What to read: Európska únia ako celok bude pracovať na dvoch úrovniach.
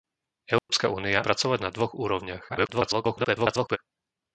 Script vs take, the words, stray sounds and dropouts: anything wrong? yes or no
yes